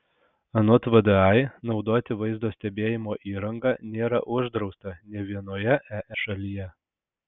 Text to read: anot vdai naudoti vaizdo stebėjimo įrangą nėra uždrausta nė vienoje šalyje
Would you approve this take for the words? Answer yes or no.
yes